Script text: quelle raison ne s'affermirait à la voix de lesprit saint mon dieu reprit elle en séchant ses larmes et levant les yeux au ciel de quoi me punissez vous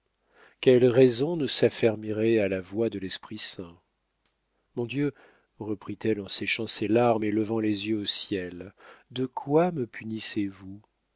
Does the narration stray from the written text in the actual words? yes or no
no